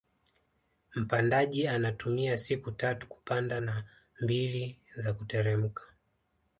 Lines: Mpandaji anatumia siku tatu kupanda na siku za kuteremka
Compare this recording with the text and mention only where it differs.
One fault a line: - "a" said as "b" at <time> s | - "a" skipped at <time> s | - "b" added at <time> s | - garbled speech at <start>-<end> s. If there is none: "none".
- "siku" said as "mbili" at 4.2 s